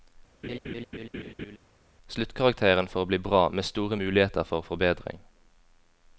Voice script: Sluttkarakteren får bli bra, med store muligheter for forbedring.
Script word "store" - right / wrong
right